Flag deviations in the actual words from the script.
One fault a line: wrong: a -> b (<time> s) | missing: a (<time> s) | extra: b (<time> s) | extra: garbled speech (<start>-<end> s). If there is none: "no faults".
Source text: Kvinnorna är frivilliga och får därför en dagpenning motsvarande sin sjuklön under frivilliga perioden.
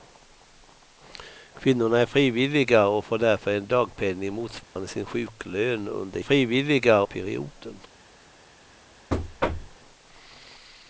no faults